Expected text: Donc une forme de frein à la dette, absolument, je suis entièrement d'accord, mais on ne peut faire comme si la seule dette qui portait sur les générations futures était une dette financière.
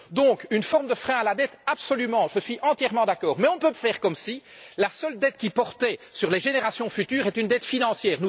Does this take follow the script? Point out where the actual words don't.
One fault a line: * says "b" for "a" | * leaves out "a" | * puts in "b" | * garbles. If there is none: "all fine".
all fine